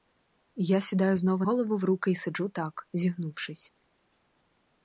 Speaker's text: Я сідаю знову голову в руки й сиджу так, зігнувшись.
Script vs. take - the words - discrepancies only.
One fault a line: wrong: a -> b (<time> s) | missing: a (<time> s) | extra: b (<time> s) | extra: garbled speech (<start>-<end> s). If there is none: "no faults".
no faults